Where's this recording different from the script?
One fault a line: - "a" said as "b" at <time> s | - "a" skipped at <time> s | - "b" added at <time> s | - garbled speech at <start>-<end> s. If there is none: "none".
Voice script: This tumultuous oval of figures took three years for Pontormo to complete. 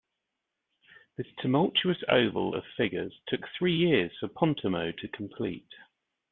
none